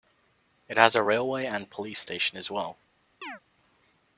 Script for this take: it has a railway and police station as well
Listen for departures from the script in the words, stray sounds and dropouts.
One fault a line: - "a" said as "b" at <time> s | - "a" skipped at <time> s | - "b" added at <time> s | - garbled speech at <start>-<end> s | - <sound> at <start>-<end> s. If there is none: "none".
- chirp at 3.2-3.4 s